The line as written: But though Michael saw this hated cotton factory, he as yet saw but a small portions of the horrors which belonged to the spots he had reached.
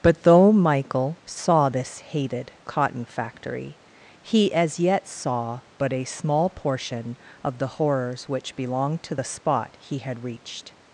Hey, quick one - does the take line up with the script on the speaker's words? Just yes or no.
no